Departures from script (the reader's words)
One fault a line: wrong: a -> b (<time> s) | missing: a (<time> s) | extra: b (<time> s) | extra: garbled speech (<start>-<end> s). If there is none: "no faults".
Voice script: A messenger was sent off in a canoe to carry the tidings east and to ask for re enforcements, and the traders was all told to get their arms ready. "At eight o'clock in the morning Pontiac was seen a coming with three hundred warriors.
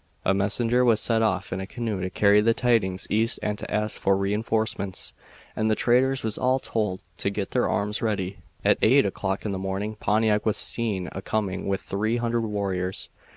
no faults